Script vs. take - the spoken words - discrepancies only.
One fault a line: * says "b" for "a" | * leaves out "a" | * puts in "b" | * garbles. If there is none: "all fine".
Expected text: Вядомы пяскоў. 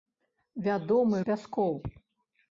all fine